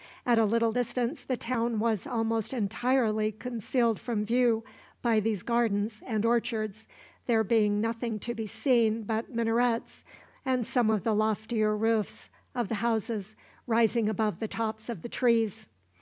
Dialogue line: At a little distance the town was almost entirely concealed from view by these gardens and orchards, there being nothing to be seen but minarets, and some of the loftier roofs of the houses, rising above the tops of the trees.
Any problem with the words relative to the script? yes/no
no